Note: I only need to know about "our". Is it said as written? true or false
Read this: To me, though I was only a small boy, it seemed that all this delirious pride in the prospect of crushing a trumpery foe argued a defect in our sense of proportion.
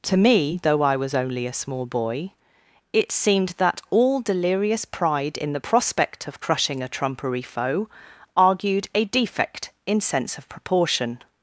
false